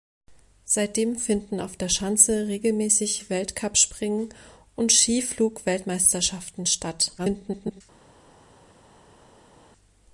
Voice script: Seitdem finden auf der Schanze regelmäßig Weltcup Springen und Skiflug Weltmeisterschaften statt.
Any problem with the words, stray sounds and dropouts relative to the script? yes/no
yes